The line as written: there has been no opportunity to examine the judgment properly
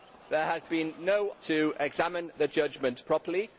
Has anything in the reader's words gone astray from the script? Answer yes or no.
yes